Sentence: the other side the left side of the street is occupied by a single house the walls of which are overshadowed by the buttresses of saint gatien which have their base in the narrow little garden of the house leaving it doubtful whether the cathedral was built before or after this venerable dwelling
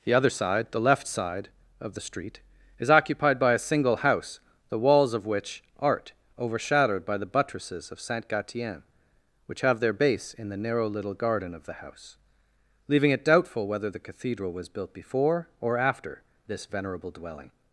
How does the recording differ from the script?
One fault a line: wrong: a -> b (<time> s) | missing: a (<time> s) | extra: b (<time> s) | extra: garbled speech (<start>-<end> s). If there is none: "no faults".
wrong: are -> art (5.8 s)